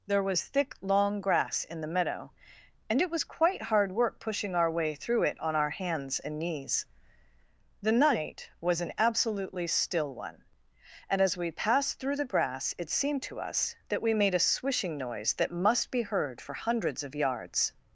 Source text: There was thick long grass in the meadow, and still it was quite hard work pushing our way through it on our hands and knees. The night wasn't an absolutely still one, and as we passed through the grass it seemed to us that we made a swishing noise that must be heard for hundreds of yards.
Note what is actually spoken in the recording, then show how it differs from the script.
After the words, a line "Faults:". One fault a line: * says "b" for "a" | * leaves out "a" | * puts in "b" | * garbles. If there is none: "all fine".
There was thick long grass in the meadow, and it was quite hard work pushing our way through it on our hands and knees. The night was an absolutely still one, and as we passed through the grass it seemed to us that we made a swishing noise that must be heard for hundreds of yards.
Faults:
* leaves out "still"
* says "was" for "wasn't"